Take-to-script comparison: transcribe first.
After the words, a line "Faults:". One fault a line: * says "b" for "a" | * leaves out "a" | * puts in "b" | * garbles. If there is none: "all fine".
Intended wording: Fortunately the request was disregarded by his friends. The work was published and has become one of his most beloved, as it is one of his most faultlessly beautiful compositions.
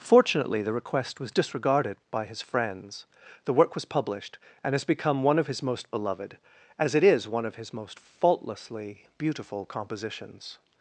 Fortunately the request was disregarded by his friends. The work was published and has become one of his most beloved, as it is one of his most faultlessly beautiful compositions.
Faults:
all fine